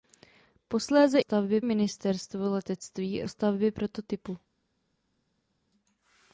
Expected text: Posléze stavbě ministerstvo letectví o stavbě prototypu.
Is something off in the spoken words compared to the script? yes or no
no